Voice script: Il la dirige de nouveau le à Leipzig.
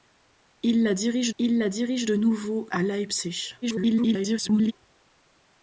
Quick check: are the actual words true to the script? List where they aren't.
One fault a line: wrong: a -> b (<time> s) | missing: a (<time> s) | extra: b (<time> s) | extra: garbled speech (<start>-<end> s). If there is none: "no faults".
extra: il la dirige (1.4 s)
missing: le (2.7 s)
extra: garbled speech (3.6-4.7 s)